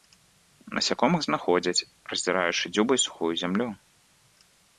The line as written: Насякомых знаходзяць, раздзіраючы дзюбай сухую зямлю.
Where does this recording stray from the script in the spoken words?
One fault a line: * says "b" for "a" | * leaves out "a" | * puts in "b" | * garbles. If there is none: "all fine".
all fine